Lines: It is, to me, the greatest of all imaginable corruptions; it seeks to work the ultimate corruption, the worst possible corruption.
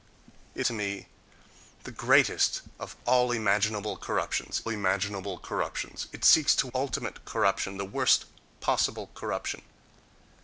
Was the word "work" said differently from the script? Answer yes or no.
yes